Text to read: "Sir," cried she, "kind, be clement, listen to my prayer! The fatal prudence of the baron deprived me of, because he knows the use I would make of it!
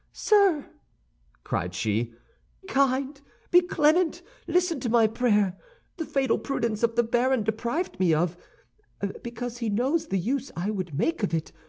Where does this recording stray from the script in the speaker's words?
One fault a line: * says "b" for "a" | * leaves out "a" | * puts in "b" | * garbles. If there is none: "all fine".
all fine